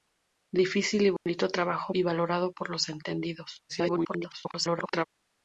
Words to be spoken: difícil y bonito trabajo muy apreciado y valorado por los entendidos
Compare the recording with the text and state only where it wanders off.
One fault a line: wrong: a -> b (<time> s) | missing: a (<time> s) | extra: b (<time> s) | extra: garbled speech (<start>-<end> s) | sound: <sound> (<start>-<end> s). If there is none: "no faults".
sound: dropout (1.2-1.3 s)
missing: muy apreciado (1.9 s)
extra: garbled speech (3.7-5.1 s)